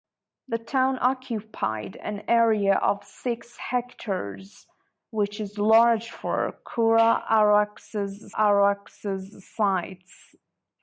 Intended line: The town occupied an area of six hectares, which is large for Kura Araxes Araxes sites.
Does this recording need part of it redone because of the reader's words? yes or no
no